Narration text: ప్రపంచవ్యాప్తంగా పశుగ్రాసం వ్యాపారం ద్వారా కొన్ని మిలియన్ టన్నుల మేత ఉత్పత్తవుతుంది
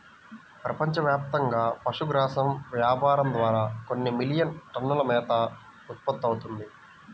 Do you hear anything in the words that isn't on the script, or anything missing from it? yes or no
no